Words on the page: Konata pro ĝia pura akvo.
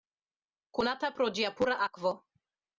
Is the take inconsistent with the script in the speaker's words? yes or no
no